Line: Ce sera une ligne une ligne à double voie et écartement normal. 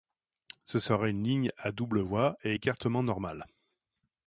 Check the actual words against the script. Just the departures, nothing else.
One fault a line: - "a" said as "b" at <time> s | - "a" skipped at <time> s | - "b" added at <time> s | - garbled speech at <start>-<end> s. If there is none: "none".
- "une ligne" skipped at 1.5 s